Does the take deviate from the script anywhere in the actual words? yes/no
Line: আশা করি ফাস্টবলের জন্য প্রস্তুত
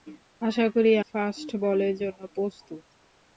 no